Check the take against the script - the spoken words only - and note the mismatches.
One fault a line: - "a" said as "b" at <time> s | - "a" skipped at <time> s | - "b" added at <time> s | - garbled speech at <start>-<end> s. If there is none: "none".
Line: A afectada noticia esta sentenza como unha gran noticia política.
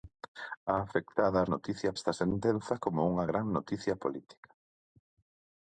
none